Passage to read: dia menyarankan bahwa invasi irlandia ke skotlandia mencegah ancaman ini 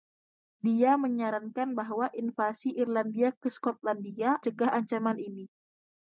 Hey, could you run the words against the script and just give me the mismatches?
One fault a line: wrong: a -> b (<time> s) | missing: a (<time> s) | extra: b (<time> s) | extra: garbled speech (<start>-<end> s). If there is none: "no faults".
no faults